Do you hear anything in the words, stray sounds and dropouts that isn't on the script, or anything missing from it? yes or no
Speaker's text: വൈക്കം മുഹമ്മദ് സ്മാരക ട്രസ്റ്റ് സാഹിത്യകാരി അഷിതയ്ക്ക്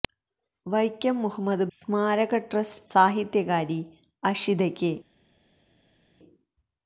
no